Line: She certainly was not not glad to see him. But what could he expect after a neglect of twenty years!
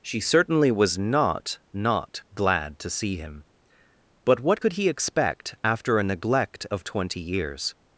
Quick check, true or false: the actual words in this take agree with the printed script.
true